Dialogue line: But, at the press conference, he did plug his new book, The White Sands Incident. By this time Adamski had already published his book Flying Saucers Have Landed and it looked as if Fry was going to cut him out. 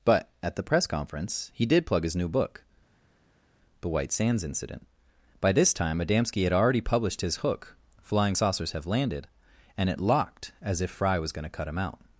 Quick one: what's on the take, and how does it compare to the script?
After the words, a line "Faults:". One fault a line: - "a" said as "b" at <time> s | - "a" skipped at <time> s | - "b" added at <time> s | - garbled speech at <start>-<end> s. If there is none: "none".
But, at the press conference, he did plug his new book, The White Sands Incident. By this time Adamski had already published his hook Flying Saucers Have Landed and it locked as if Fry was going to cut him out.
Faults:
- "book" said as "hook" at 7.4 s
- "looked" said as "locked" at 10.0 s